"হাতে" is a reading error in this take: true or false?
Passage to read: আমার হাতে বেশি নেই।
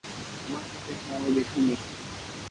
false